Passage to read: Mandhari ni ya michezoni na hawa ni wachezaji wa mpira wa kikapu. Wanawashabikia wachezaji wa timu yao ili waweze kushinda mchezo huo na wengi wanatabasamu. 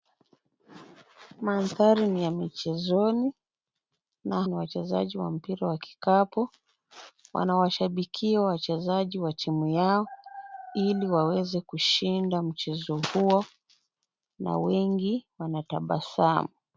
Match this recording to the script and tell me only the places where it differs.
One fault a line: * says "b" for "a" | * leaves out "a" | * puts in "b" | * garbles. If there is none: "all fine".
* leaves out "hawa"